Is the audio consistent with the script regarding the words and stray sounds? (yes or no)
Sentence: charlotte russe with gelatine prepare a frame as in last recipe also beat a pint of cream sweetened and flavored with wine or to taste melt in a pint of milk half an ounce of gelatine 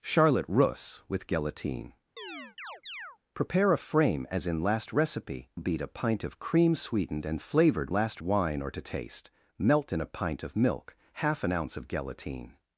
no